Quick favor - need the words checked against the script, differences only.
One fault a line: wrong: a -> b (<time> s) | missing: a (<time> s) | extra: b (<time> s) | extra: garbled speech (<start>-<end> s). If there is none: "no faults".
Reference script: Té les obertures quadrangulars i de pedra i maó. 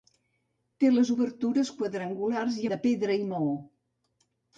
no faults